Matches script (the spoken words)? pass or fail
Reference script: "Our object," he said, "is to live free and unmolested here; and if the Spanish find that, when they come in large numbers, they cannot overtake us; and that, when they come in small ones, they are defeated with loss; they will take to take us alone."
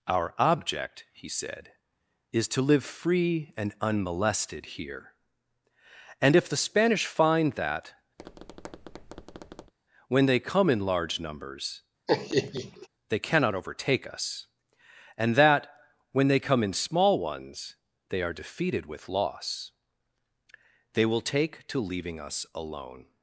fail